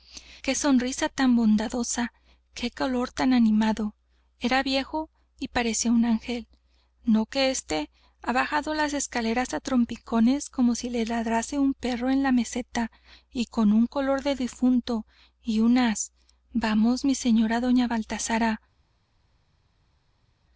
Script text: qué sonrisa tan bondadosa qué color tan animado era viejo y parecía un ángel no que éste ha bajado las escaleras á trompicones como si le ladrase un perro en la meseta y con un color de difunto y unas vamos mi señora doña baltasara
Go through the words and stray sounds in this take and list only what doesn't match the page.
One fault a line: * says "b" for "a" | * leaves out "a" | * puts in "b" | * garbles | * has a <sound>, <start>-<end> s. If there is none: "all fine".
all fine